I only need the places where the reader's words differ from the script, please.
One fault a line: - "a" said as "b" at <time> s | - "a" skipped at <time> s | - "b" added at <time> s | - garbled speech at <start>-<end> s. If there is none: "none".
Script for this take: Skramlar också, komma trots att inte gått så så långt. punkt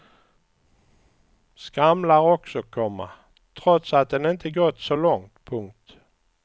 - "den" added at 4.1 s
- "så" skipped at 4.9 s